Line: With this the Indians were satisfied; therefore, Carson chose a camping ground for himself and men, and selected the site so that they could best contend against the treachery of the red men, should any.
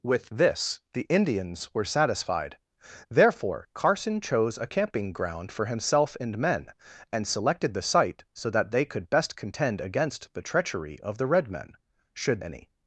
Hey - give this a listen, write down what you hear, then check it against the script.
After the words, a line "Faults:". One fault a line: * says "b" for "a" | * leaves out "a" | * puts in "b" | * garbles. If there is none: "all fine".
With this the Indians were satisfied; therefore, Carson chose a camping ground for himself and men, and selected the site so that they could best contend against the treachery of the red men, should any.
Faults:
all fine